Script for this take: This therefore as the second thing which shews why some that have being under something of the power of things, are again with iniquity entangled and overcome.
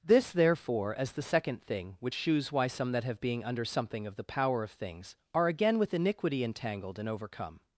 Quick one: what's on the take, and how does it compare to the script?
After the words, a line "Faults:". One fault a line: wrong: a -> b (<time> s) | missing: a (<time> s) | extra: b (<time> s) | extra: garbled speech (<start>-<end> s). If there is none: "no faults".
This therefore as the second thing which shews why some that have being under something of the power of things, are again with iniquity entangled and overcome.
Faults:
no faults